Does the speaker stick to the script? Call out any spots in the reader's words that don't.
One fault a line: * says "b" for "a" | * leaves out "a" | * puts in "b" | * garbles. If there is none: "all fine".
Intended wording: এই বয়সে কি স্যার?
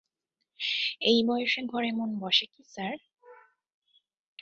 * puts in "ঘরে মন বসে"